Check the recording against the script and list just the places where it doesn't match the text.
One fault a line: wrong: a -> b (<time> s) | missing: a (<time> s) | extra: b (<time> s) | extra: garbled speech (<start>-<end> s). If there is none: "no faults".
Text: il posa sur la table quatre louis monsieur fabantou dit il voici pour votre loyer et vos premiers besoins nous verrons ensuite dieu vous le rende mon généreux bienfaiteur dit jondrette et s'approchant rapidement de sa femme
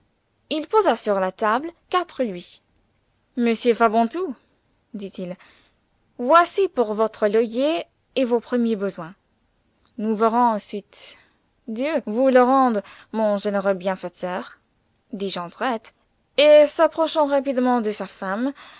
no faults